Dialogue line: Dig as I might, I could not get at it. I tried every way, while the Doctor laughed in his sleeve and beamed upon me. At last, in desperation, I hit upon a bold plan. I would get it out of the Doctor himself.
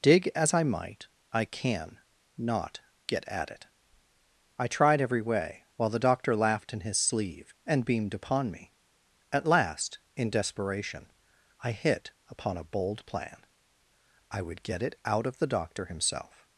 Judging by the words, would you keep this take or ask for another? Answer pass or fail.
fail